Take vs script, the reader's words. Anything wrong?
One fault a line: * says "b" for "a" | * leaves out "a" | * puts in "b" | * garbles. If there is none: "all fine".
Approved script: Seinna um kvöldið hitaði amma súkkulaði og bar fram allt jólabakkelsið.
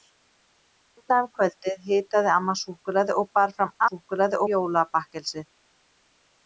* says "súkkulaði" for "allt"